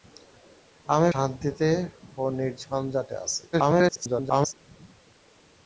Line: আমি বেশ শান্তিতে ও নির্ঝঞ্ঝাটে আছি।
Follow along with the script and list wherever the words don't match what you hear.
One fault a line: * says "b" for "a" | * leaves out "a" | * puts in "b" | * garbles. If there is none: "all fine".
* leaves out "বেশ"
* garbles